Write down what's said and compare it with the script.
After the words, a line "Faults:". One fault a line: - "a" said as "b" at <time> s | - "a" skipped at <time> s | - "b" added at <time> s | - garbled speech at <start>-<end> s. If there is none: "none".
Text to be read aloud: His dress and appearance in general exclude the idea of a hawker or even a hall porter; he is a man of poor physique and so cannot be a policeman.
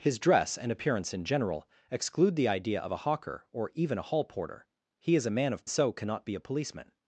His dress and appearance in general exclude the idea of a hawker or even a hall porter; he is a man of so cannot be a policeman.
Faults:
- "poor physique and" skipped at 5.7 s